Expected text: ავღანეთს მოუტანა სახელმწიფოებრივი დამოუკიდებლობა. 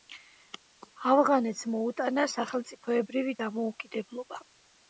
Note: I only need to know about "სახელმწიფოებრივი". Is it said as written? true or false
true